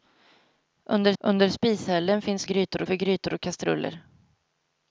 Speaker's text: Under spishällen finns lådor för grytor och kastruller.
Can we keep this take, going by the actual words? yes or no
no